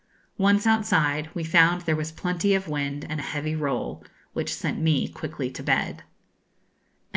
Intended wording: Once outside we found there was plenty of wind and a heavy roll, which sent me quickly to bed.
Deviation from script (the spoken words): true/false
false